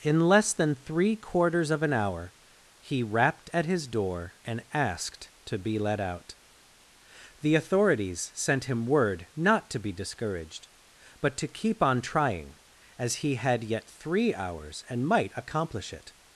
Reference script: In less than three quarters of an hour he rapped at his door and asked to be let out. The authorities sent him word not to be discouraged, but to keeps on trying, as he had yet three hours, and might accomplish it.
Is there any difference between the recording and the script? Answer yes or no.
yes